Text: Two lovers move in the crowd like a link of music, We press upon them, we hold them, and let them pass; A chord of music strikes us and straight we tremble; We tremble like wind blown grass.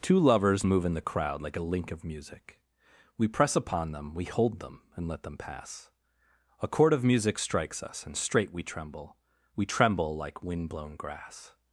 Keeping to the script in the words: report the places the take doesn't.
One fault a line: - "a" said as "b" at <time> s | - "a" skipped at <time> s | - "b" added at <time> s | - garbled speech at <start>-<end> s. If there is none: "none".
none